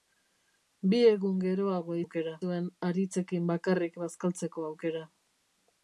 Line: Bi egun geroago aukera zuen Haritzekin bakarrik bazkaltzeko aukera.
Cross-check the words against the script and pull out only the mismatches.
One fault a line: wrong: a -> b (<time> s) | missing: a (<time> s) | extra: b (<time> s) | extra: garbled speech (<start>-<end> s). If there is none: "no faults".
no faults